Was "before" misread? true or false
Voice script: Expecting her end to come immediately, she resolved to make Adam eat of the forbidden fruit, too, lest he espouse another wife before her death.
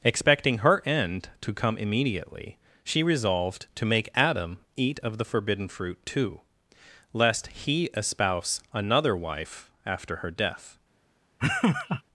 true